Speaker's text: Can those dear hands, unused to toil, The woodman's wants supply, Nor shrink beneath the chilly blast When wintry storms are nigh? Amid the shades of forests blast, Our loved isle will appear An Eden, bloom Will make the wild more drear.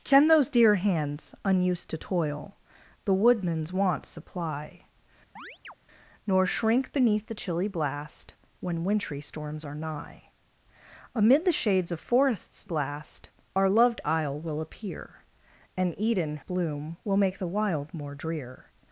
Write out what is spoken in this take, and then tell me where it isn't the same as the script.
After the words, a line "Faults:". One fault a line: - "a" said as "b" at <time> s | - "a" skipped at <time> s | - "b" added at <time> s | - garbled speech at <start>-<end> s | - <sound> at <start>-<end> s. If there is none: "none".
Can those dear hands, unused to toil, The woodman's wants supply, Nor shrink beneath the chilly blast When wintry storms are nigh? Amid the shades of forests blast, Our loved isle will appear An Eden, bloom Will make the wild more drear.
Faults:
- chirp at 5.4-5.7 s